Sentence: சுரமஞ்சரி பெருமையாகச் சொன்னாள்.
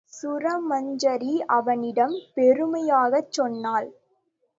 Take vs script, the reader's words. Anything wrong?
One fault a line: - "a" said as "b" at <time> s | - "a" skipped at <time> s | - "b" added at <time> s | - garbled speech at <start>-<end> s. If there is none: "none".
- "அவனிடம்" added at 1.5 s